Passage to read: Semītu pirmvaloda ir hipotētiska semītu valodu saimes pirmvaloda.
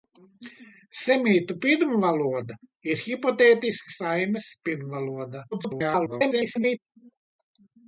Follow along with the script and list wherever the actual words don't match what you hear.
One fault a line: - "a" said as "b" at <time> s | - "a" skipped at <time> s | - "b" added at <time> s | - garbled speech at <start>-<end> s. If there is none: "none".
- "semītu valodu" skipped at 4.0 s
- garbled speech at 5.5-6.8 s